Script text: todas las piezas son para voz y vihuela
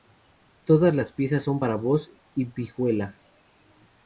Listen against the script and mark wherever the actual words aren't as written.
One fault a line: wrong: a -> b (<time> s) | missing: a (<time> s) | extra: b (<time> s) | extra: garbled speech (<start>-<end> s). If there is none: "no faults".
no faults